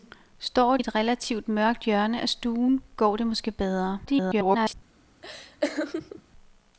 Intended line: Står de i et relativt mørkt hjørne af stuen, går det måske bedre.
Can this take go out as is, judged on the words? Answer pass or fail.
fail